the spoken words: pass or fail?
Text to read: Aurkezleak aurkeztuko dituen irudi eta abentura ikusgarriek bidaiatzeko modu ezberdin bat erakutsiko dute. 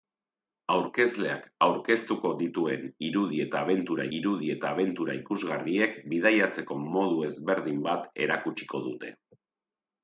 fail